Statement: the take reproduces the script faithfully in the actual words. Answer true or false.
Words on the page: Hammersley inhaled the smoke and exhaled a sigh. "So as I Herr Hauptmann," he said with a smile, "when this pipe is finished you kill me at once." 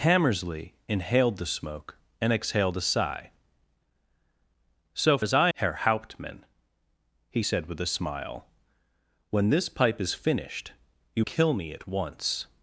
true